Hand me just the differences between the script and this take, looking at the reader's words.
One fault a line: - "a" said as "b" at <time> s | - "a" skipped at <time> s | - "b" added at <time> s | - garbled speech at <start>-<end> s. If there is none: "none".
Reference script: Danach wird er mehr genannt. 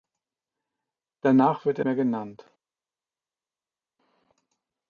none